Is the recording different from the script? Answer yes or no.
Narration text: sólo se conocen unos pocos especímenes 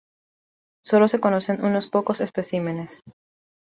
no